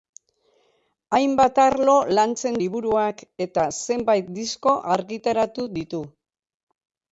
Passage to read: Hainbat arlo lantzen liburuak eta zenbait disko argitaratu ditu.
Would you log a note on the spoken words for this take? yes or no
no